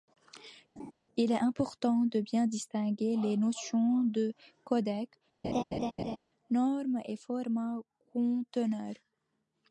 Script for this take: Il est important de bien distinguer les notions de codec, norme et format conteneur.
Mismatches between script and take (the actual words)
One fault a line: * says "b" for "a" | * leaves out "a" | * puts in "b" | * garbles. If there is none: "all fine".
all fine